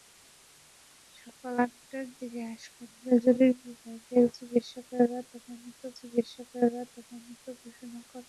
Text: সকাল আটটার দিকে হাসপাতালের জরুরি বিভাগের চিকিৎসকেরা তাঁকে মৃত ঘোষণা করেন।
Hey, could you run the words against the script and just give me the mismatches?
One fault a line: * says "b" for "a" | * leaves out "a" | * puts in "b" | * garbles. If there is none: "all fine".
* puts in "চিকিৎসকেরা তাঁকে মৃত"